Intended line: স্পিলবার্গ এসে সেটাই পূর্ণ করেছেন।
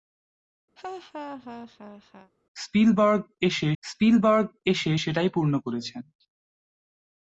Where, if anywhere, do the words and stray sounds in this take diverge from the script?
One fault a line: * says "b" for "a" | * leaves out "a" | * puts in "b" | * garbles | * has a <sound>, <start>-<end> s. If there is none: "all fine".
* has a laugh, 0.8-2.3 s
* puts in "স্পিলবার্গ এসে"